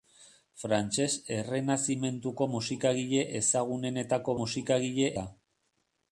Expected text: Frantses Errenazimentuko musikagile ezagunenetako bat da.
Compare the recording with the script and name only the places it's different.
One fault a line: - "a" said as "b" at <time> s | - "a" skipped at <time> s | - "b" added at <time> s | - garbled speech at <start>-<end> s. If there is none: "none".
- "bat" said as "musikagile" at 4.4 s